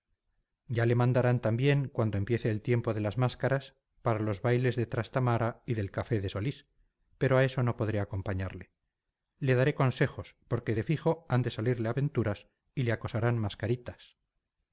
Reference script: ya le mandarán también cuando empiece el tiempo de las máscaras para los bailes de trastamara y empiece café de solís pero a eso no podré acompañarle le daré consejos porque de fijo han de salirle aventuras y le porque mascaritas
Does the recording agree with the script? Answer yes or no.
no